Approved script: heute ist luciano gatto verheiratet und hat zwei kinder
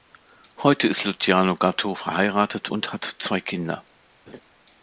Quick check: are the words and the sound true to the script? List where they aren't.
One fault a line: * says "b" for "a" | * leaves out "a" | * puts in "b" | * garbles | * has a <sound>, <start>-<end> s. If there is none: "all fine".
* has a laugh, 4.3-4.4 s